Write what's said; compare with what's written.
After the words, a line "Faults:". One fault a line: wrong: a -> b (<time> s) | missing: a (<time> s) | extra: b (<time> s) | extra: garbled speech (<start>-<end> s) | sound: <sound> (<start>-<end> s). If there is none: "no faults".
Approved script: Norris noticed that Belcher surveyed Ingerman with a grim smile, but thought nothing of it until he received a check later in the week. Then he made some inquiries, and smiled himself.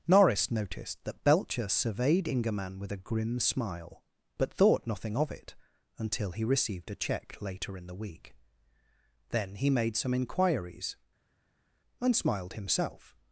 Norris noticed that Belcher surveyed Ingerman with a grim smile, but thought nothing of it until he received a check later in the week. Then he made some inquiries, and smiled himself.
Faults:
no faults